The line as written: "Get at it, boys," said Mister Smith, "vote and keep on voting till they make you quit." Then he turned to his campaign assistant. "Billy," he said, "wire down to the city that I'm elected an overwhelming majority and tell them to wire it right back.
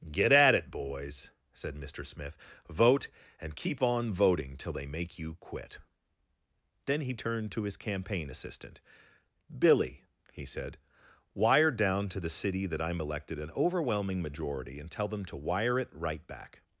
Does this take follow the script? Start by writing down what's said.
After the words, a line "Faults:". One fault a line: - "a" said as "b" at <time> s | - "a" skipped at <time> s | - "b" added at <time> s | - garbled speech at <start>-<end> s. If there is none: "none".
"Get at it, boys," said Mister Smith, "vote and keep on voting till they make you quit." Then he turned to his campaign assistant. "Billy," he said, "wire down to the city that I'm elected an overwhelming majority and tell them to wire it right back.
Faults:
none